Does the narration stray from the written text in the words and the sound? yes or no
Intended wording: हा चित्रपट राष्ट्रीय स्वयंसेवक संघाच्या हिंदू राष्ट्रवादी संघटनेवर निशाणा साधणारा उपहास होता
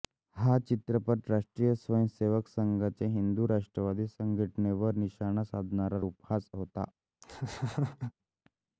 yes